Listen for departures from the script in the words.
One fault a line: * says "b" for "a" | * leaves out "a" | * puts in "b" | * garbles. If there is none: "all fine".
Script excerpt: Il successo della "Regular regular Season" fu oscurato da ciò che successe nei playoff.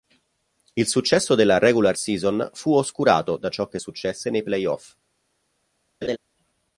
* leaves out "regular"